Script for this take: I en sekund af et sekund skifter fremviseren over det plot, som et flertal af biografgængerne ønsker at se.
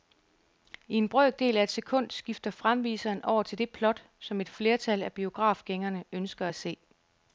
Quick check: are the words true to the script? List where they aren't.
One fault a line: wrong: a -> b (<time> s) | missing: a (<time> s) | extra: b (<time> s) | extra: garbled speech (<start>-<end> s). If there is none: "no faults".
wrong: sekund -> brøkdel (1.1 s)
extra: til (3.4 s)